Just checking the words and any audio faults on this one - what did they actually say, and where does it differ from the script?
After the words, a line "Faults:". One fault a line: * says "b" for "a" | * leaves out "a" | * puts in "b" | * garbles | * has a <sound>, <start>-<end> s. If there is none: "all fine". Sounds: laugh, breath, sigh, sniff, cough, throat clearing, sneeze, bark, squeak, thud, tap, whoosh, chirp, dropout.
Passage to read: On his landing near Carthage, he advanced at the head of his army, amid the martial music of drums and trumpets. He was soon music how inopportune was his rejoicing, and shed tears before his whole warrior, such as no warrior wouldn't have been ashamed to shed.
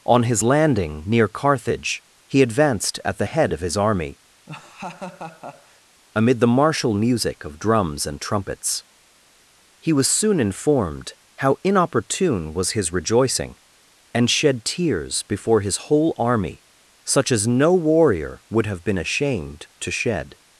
On his landing near Carthage, he advanced at the head of his army, amid the martial music of drums and trumpets. He was soon informed how inopportune was his rejoicing, and shed tears before his whole army, such as no warrior would have been ashamed to shed.
Faults:
* has a laugh, 4.5-5.8 s
* says "informed" for "music"
* says "army" for "warrior"
* says "would" for "wouldn't"